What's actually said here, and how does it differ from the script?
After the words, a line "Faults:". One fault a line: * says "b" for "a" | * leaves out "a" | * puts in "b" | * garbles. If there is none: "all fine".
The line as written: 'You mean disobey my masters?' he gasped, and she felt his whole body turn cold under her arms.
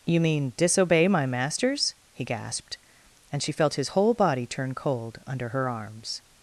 'You mean disobey my masters?' he gasped, and she felt his whole body turn cold under her arms.
Faults:
all fine